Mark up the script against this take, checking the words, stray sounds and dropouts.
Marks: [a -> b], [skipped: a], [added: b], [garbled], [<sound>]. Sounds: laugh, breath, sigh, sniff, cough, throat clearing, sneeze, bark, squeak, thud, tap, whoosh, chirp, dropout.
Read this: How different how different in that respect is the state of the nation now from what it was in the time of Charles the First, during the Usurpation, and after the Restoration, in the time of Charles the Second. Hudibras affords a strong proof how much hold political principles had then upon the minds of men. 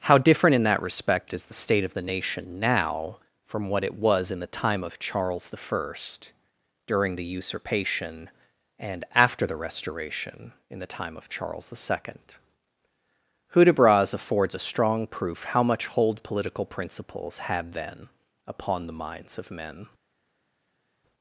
How different [skipped: how different] in that respect is the state of the nation now from what it was in the time of Charles the First, during the Usurpation, and after the Restoration, in the time of Charles the Second. Hudibras affords a strong proof how much hold political principles had then upon the minds of men.